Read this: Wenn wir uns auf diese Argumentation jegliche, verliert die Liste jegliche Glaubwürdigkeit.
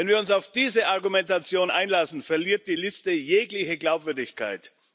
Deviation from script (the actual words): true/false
true